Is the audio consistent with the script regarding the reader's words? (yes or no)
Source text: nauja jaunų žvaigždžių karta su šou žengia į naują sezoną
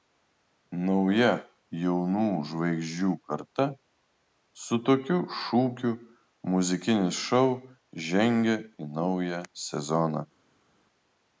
no